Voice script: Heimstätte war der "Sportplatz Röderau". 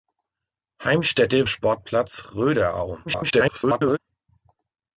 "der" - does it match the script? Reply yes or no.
no